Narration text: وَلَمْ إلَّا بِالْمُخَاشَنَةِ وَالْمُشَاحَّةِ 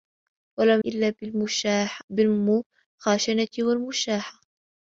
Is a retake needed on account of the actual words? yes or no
no